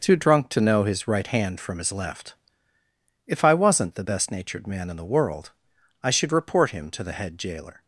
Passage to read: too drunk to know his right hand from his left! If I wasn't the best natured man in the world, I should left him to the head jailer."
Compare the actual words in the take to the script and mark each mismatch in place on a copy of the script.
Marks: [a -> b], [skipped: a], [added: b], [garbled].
too drunk to know his right hand from his left! If I wasn't the best natured man in the world, I should [left -> report] him to the head jailer."